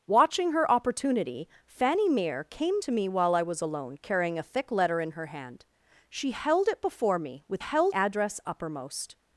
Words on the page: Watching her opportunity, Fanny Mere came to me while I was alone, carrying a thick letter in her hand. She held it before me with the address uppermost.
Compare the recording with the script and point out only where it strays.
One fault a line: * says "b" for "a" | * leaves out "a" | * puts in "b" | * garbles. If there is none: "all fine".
* says "held" for "the"